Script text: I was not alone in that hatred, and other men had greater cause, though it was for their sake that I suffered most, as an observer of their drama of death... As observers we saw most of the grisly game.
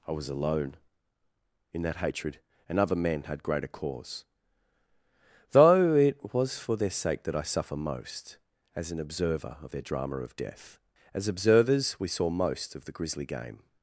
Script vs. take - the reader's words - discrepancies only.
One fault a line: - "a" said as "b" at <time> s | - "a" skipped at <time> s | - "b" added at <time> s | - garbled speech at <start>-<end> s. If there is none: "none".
- "not" skipped at 0.3 s
- "suffered" said as "suffer" at 7.4 s